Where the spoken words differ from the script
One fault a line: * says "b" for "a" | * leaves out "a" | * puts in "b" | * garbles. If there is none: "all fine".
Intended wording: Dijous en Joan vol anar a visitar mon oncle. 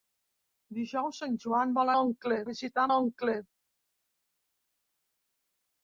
* says "oncle" for "anar"
* leaves out "mon"